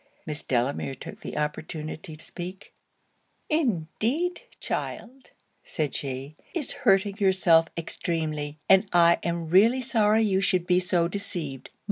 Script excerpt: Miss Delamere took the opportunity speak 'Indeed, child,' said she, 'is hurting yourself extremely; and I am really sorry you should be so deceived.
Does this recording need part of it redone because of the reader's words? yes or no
no